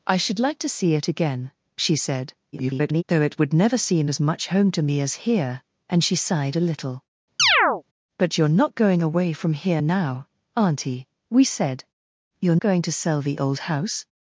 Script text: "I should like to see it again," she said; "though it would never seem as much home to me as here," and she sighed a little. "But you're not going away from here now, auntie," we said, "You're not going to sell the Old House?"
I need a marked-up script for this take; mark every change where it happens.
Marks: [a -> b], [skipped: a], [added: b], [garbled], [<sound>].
"I should like to see it again," she said; [garbled] "though it would never seem as much home to me as here," and she sighed a little. [chirp] "But you're not going away from here now, auntie," we said, "You're [skipped: not] going to sell the Old House?"